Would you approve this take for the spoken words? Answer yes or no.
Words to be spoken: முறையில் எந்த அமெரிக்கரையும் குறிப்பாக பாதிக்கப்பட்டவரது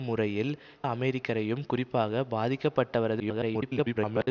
no